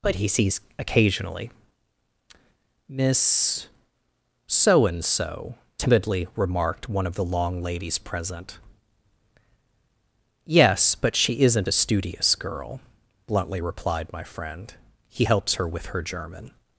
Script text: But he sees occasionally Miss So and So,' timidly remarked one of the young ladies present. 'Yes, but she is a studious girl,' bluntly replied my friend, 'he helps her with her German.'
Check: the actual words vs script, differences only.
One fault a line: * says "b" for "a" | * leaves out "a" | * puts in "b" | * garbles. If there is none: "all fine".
* says "long" for "young"
* says "isn't" for "is"